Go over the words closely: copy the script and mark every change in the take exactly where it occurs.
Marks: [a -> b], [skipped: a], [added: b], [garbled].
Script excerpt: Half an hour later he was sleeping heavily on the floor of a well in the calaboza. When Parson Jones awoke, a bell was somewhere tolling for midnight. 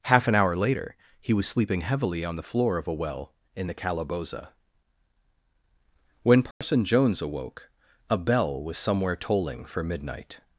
Half an hour later he was sleeping heavily on the floor of a well in the calaboza. When Parson Jones awoke, a bell was somewhere tolling for midnight.